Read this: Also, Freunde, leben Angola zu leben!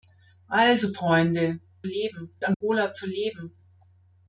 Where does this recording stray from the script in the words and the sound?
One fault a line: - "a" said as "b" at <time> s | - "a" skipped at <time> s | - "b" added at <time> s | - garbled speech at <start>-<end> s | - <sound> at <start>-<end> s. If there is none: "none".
- dropout at 2.5-2.6 s